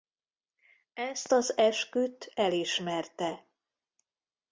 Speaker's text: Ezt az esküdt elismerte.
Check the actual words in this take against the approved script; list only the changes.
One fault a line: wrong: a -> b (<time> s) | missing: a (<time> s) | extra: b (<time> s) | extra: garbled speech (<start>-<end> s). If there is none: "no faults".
no faults